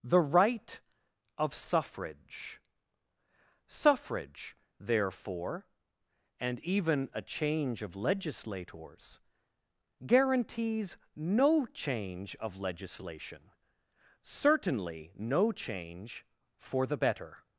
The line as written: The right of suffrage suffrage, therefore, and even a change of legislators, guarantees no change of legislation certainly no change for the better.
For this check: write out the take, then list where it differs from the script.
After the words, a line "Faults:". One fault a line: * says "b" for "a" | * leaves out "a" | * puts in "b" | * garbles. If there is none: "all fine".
The right of suffrage suffrage, therefore, and even a change of legislators, guarantees no change of legislation certainly no change for the better.
Faults:
all fine